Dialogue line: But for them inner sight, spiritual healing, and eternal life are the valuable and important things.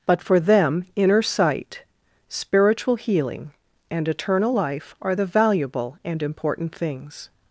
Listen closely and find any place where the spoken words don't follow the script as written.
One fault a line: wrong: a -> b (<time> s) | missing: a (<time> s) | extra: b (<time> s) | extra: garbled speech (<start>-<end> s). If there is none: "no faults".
no faults